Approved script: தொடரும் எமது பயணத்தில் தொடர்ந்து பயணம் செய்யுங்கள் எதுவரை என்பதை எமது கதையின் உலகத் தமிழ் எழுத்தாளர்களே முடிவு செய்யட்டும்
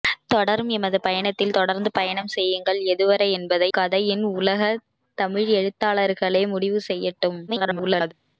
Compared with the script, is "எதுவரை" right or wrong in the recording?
right